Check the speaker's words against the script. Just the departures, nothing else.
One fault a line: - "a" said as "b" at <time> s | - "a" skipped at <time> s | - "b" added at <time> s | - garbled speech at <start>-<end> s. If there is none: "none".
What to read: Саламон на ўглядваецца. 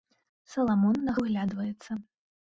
none